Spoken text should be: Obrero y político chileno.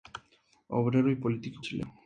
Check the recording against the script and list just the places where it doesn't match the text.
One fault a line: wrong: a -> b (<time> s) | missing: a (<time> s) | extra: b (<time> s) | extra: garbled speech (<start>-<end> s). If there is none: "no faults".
no faults